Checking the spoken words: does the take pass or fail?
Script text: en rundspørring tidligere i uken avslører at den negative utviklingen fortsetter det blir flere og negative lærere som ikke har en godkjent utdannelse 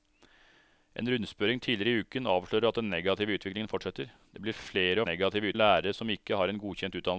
pass